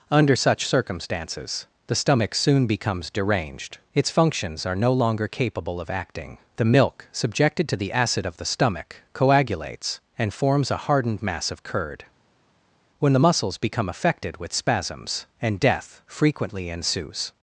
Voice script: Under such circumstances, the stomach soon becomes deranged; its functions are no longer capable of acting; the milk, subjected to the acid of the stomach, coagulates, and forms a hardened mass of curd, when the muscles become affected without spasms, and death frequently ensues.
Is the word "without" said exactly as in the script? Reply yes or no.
no